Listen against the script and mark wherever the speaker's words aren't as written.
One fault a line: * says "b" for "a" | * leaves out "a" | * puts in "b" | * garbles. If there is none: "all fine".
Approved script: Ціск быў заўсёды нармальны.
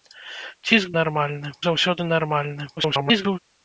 * says "нармальны" for "быў"
* garbles